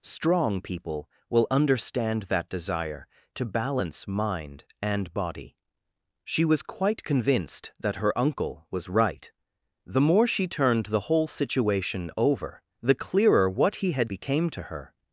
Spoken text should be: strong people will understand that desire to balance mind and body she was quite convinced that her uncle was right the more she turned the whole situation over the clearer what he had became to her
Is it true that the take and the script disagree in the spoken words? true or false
false